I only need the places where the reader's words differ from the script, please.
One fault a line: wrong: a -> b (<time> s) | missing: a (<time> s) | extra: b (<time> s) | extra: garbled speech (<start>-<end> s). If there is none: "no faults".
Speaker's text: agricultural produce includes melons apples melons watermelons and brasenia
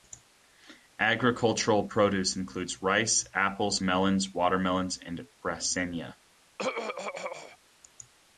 wrong: melons -> rice (2.8 s)